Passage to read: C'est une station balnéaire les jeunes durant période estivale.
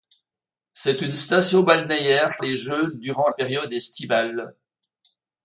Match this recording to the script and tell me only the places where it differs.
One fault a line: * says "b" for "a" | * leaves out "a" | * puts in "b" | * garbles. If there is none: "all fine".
all fine